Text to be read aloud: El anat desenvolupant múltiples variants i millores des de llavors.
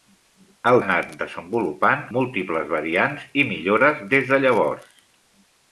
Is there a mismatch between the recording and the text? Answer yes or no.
no